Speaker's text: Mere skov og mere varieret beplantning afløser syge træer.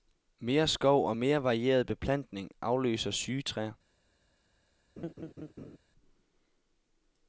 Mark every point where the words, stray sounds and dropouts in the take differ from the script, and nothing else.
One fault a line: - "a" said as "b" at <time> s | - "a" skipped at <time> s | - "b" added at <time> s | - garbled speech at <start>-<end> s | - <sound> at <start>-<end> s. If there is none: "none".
- laugh at 5.0-5.8 s